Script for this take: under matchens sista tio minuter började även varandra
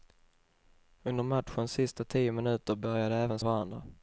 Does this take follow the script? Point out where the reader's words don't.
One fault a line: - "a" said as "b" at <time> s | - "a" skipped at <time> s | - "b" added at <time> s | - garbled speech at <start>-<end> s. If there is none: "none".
none